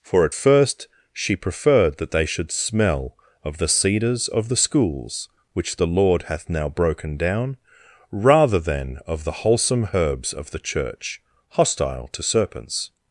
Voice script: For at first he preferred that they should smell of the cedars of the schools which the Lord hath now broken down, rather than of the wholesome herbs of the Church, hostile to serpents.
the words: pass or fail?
fail